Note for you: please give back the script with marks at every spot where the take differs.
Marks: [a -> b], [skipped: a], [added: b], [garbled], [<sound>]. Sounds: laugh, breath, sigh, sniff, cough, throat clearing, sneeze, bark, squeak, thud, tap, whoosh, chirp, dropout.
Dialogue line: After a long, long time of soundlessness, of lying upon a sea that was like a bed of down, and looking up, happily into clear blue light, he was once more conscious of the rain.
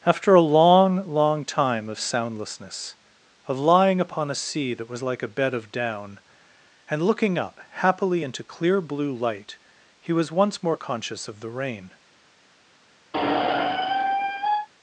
After a long, long time of soundlessness, of lying upon a sea that was like a bed of down, and looking up, happily into clear blue light, he was once more conscious of the rain. [squeak]